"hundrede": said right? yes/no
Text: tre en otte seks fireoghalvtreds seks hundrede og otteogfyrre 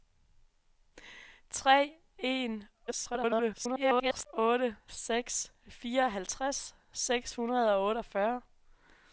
yes